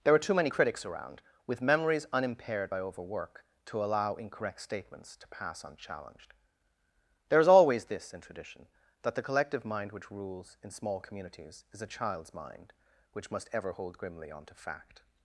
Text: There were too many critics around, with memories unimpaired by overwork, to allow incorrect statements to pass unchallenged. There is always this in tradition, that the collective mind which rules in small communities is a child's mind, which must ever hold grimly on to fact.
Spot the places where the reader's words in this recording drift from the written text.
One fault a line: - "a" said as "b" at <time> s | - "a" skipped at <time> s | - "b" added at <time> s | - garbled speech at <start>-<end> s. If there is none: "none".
- "were" said as "are" at 0.1 s